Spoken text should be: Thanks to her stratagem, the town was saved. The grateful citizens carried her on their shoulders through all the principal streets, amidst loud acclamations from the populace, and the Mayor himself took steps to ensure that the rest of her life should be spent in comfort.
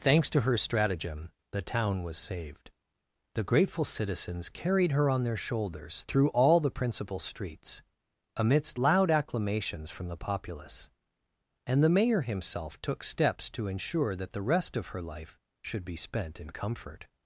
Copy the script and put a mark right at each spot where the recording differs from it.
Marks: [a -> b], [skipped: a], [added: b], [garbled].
Thanks to her stratagem, the town was saved. The grateful citizens carried her on their shoulders through all the principal streets, amidst loud acclamations from the populace, and the Mayor himself took steps to ensure that the rest of her life should be spent in comfort.